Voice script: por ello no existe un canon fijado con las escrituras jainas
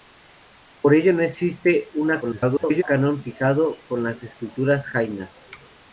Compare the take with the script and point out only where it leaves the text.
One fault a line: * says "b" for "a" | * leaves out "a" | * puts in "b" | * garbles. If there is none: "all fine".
* garbles